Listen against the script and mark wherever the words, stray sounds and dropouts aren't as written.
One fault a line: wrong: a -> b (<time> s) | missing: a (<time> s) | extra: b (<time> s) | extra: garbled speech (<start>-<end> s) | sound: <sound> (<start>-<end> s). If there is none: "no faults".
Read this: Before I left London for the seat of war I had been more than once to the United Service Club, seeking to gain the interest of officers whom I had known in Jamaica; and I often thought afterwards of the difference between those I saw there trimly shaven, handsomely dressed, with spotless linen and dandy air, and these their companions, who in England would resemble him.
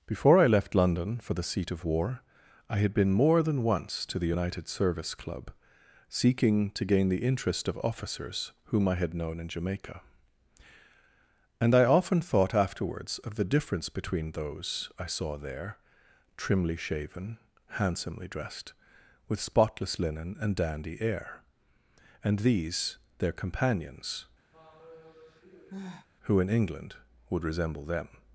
sound: sigh (24.5-26.1 s)
wrong: him -> them (27.9 s)